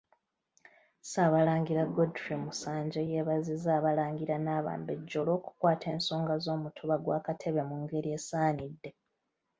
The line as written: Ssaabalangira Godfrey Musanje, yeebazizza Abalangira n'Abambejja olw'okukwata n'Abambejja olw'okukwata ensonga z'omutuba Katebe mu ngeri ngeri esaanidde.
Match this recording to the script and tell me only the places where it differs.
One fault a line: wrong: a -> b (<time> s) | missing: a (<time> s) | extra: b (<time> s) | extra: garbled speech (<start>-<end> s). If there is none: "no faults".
missing: n'Abambejja olw'okukwata (5.8 s)
extra: gwa (7.0 s)
missing: ngeri (8.1 s)